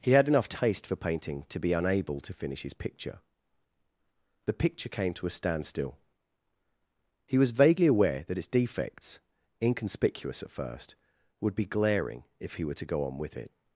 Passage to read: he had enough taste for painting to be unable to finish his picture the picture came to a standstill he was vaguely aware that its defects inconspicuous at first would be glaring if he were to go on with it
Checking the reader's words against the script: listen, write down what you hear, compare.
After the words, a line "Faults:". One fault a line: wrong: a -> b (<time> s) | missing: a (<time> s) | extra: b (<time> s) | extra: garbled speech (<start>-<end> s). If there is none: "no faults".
he had enough taste for painting to be unable to finish his picture the picture came to a standstill he was vaguely aware that its defects inconspicuous at first would be glaring if he were to go on with it
Faults:
no faults